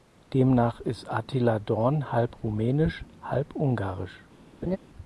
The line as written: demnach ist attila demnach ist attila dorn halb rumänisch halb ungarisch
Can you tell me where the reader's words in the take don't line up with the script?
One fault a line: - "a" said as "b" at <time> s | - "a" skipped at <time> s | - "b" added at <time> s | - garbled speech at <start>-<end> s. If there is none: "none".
- "demnach ist attila" skipped at 1.6 s